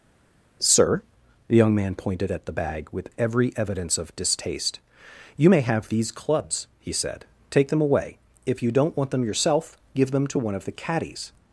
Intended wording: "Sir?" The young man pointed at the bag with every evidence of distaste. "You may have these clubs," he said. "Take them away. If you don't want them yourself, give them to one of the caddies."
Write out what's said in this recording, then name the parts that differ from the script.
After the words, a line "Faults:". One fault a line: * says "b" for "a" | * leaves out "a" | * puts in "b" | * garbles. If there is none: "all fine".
"Sir?" The young man pointed at the bag with every evidence of distaste. "You may have these clubs," he said. "Take them away. If you don't want them yourself, give them to one of the caddies."
Faults:
all fine